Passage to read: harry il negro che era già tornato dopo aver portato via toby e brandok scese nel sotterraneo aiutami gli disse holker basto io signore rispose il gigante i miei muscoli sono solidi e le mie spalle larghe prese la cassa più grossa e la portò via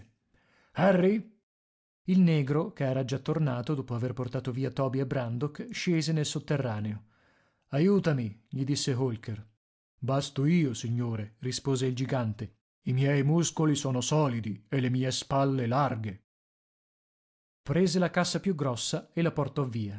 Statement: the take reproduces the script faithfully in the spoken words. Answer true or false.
true